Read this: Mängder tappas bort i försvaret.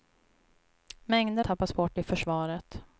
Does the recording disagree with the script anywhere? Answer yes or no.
no